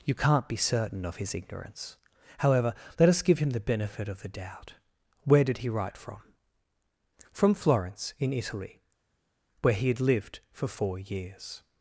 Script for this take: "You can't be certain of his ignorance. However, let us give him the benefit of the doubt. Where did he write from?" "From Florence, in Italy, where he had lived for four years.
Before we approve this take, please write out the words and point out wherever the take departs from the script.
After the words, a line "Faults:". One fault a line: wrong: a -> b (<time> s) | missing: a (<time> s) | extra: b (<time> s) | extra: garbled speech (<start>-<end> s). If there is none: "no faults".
"You can't be certain of his ignorance. However, let us give him the benefit of the doubt. Where did he write from?" "From Florence, in Italy, where he had lived for four years.
Faults:
no faults